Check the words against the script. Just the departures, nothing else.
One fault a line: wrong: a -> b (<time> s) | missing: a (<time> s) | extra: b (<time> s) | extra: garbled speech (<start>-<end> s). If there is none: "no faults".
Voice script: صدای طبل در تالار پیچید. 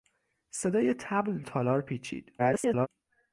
missing: در (1.4 s)
extra: garbled speech (2.4-2.9 s)